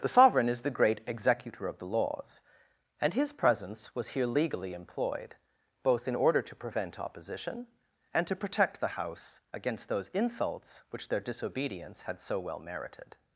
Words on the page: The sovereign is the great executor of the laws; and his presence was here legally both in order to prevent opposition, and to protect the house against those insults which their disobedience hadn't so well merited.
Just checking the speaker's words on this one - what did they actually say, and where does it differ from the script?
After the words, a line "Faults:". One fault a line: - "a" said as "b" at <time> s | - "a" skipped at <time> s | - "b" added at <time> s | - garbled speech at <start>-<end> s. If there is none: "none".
The sovereign is the great executor of the laws; and his presence was here legally employed, both in order to prevent opposition, and to protect the house against those insults which their disobedience had so well merited.
Faults:
- "employed" added at 4.7 s
- "hadn't" said as "had" at 12.0 s